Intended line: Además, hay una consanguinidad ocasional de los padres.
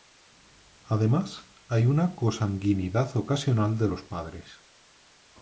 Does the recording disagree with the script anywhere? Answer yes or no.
no